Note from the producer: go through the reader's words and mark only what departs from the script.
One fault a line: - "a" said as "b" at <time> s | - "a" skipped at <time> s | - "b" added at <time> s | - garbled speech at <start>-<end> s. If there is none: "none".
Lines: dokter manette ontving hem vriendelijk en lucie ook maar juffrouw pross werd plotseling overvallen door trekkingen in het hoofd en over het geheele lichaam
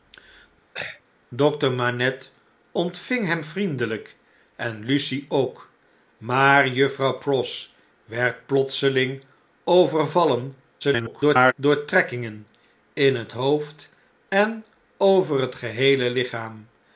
- garbled speech at 10.8-11.5 s